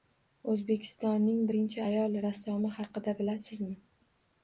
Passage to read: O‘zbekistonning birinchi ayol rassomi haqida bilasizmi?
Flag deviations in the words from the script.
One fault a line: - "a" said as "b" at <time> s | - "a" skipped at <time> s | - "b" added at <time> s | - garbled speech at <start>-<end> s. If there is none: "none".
none